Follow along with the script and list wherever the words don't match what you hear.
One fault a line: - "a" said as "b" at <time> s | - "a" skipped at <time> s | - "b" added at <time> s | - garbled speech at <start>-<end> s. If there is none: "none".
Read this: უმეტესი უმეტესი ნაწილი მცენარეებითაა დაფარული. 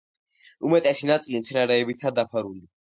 - "უმეტესი" skipped at 1.1 s